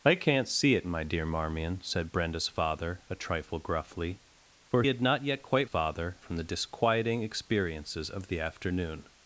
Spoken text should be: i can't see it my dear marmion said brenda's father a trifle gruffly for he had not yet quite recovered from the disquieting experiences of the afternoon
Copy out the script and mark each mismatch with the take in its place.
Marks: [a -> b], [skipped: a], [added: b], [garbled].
i can't see it my dear marmion said brenda's father a trifle gruffly for [skipped: he] had not yet quite [recovered -> father] from the disquieting experiences of the afternoon